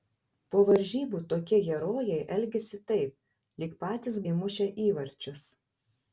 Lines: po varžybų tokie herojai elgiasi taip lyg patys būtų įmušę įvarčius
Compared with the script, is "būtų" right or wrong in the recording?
wrong